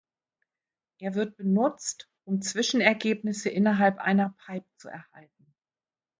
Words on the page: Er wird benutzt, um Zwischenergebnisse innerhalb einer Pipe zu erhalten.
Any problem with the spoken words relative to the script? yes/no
no